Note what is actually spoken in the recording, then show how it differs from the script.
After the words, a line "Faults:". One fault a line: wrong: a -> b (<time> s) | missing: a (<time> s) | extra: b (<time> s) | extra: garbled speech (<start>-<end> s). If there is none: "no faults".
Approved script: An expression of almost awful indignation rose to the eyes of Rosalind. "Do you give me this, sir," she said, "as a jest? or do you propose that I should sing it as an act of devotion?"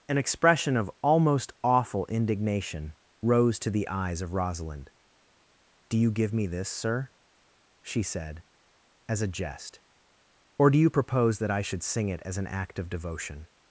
An expression of almost awful indignation rose to the eyes of Rosalind. "Do you give me this, sir," she said, "as a jest? or do you propose that I should sing it as an act of devotion?"
Faults:
no faults